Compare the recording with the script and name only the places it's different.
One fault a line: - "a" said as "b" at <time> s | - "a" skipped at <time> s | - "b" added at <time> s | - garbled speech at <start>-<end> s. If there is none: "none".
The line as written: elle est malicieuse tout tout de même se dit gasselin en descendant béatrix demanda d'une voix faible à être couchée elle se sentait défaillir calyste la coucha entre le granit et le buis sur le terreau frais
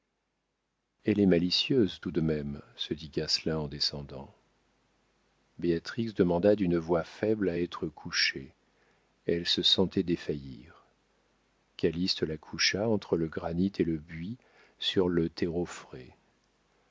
- "tout" skipped at 2.1 s